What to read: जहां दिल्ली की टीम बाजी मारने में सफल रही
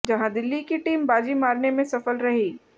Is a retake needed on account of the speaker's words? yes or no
no